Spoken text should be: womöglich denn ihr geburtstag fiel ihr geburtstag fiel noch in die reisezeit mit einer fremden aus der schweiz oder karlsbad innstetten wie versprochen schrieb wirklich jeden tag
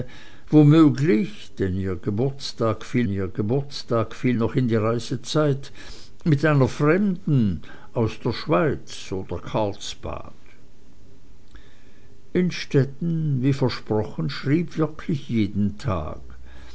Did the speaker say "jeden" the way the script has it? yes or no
yes